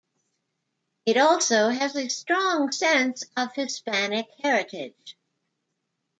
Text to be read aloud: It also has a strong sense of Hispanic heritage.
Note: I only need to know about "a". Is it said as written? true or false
true